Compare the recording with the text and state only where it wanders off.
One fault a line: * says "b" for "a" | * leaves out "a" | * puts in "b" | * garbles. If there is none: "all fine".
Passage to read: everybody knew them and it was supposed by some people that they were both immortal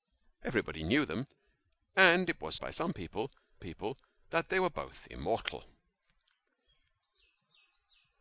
* leaves out "supposed"
* puts in "people"